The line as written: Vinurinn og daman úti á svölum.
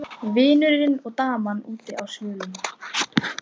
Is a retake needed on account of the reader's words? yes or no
no